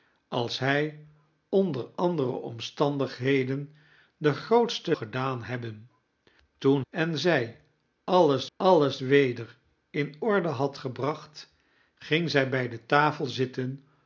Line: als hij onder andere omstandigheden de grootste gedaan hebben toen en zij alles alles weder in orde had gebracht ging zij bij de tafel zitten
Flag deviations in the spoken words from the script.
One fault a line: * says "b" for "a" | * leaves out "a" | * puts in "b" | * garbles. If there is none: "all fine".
all fine